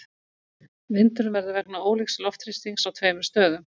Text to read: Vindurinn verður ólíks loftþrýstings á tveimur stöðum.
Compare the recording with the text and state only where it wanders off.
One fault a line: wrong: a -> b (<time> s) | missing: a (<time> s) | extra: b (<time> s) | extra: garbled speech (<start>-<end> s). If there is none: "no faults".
extra: vegna (1.6 s)